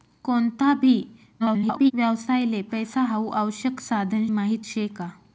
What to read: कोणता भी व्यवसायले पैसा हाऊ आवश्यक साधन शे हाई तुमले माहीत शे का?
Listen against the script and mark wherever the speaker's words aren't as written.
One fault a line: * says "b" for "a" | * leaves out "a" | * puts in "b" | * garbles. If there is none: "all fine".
* garbles
* leaves out "शे हाई तुमले"